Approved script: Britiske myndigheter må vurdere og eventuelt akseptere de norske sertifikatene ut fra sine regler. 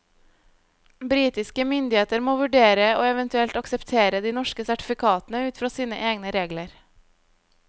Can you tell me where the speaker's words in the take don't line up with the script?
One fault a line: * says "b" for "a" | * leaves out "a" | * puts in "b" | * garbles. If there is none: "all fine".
* puts in "egne"